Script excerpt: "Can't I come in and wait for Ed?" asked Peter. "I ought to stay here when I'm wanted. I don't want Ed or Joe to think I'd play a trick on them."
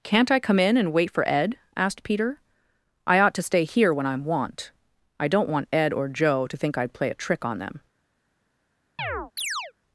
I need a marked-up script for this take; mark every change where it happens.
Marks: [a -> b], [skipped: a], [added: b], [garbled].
"Can't I come in and wait for Ed?" asked Peter. "I ought to stay here when I'm [wanted. -> want] I don't want Ed or Joe to think I'd play a trick on them."